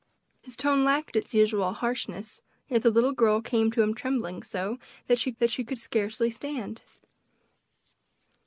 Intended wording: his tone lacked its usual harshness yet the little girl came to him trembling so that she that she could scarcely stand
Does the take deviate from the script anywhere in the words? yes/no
no